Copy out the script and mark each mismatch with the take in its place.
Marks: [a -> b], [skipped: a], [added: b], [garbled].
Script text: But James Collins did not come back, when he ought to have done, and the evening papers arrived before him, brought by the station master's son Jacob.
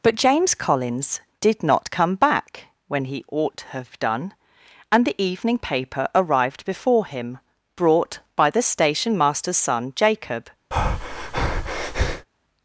But James Collins did not come back, when he ought to have done, and the evening [papers -> paper] arrived before him, brought by the station master's son Jacob.